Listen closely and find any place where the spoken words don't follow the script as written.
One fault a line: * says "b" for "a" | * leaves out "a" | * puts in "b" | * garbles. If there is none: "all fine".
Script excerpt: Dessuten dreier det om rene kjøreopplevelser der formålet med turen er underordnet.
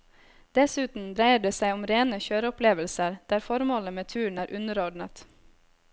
* puts in "seg"